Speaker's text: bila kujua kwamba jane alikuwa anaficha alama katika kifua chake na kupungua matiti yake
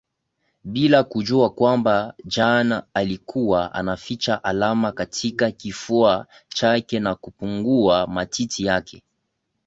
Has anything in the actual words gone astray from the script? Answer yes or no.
no